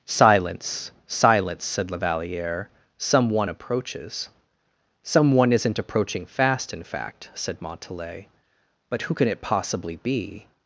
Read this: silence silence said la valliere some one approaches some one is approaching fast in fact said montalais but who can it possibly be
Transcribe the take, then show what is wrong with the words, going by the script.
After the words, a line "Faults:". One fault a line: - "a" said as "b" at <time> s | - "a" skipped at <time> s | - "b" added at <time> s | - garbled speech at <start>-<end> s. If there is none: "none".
silence silence said la valliere some one approaches some one isn't approaching fast in fact said montalais but who can it possibly be
Faults:
- "is" said as "isn't" at 5.5 s